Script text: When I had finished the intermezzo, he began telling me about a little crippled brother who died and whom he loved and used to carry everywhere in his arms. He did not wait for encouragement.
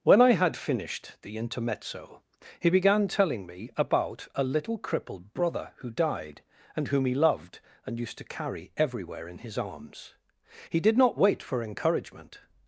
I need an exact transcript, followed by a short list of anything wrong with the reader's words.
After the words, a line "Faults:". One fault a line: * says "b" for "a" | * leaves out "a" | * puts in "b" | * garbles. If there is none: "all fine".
When I had finished the intermezzo, he began telling me about a little crippled brother who died and whom he loved and used to carry everywhere in his arms. He did not wait for encouragement.
Faults:
all fine